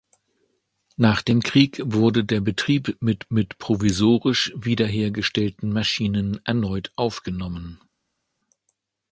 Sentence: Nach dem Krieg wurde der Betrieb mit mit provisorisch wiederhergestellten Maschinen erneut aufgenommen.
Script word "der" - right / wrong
right